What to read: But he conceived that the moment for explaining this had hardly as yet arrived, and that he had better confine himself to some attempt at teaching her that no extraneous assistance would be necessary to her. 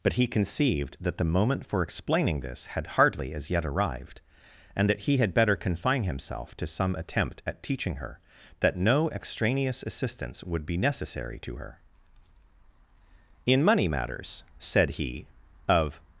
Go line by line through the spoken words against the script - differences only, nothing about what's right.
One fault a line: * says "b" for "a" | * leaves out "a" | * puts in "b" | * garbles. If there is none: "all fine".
* puts in "In money matters said he of"